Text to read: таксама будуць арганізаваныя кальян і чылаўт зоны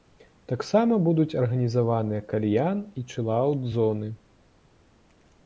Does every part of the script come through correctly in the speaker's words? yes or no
yes